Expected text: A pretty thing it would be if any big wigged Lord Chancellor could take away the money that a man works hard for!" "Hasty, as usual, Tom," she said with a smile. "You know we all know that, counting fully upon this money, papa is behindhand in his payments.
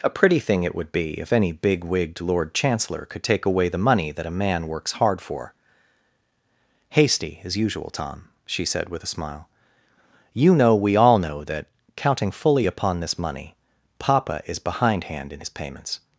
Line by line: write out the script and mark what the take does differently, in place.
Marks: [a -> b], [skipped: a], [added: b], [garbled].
A pretty thing it would be if any big wigged Lord Chancellor could take away the money that a man works hard for!" "Hasty, as usual, Tom," she said with a smile. "You know we all know that, counting fully upon this money, papa is behindhand in his payments.